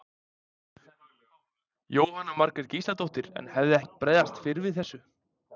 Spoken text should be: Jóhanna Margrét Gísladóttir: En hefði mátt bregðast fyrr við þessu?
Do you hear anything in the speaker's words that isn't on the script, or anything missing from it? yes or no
no